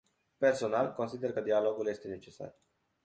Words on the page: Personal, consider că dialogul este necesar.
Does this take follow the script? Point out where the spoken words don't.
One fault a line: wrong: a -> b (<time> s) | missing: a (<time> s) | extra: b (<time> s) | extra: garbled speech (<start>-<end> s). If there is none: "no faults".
no faults